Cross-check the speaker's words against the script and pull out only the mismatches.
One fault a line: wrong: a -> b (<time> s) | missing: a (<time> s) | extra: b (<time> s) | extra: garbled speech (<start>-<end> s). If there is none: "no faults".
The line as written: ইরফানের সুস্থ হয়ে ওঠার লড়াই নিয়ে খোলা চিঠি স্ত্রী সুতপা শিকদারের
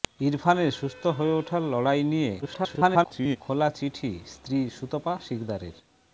extra: garbled speech (2.4-3.4 s)